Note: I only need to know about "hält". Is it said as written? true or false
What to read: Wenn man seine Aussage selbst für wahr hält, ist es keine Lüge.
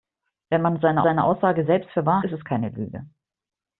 false